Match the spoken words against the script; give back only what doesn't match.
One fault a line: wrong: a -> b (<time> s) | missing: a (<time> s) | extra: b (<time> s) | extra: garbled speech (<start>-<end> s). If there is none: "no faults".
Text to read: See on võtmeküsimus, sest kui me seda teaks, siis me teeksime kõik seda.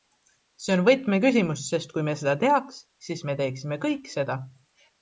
no faults